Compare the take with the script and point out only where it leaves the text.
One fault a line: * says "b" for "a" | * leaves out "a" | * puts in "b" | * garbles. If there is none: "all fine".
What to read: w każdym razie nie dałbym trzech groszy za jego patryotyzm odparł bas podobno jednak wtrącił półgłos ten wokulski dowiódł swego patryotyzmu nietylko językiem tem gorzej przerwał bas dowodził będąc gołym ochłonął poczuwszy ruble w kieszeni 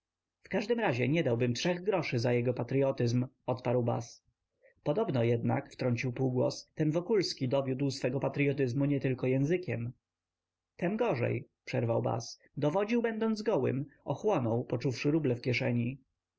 all fine